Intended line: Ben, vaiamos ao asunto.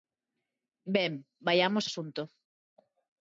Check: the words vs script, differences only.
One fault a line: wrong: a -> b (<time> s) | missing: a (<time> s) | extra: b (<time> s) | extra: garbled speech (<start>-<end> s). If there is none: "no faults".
missing: ao (1.9 s)